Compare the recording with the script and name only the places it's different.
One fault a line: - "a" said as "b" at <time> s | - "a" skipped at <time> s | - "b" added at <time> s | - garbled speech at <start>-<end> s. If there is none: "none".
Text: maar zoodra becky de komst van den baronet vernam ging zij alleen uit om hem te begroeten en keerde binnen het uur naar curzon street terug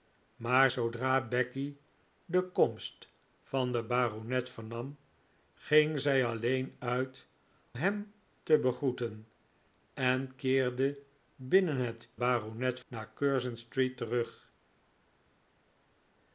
- "om" skipped at 7.3 s
- "uur" said as "baronet" at 12.2 s